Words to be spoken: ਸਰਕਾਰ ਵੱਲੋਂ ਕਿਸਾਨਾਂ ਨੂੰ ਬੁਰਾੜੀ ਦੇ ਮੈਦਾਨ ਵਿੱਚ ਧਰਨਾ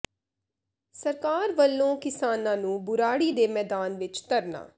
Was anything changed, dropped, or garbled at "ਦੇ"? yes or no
no